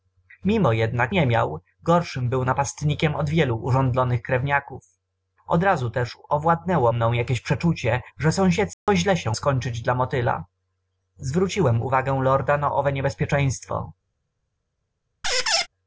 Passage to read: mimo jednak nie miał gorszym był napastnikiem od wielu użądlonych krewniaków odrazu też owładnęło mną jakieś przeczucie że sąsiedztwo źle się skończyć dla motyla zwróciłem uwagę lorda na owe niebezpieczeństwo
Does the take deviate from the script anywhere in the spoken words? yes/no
no